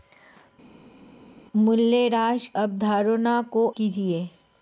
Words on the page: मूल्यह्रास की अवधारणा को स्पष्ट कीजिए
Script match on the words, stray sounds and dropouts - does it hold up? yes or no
no